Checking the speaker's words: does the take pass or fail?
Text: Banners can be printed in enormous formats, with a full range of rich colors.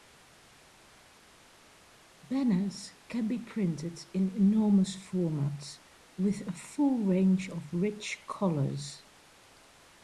pass